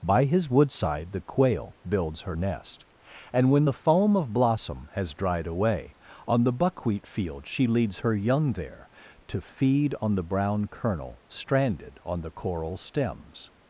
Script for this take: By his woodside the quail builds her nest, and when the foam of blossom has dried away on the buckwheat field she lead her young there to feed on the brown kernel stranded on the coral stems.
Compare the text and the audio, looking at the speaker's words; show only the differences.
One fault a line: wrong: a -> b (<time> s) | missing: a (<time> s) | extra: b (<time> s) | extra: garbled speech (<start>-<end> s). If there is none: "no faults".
wrong: lead -> leads (7.7 s)